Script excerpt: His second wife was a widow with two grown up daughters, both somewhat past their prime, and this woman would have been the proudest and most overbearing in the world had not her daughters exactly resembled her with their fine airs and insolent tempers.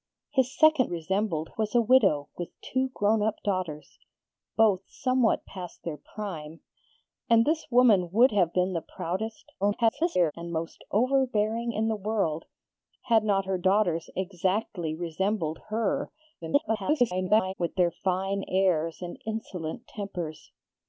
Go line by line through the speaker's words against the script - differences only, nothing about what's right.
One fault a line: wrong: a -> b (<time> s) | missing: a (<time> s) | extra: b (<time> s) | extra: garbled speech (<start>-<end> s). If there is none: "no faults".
wrong: wife -> resembled (0.8 s)
extra: garbled speech (9.6-10.3 s)
extra: garbled speech (16.4-17.5 s)